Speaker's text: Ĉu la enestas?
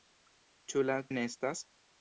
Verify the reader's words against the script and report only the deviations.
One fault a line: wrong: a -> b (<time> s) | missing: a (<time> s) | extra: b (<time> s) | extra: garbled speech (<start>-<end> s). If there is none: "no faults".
no faults